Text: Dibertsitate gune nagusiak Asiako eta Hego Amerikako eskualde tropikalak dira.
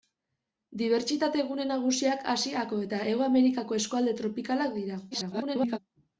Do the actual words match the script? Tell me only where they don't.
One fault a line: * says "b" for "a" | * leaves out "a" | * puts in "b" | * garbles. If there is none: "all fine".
* garbles